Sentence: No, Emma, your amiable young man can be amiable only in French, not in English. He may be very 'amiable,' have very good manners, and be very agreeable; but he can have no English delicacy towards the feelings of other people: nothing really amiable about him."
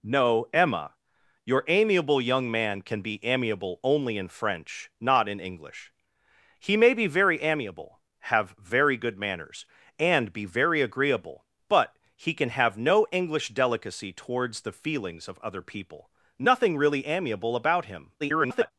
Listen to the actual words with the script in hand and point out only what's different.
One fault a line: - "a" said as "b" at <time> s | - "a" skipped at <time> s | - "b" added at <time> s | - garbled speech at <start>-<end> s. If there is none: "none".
- garbled speech at 18.2-18.7 s